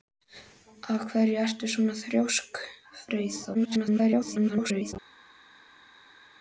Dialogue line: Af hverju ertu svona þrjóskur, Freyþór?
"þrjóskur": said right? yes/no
yes